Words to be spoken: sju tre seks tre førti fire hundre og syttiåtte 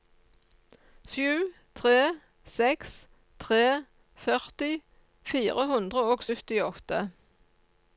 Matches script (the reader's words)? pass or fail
pass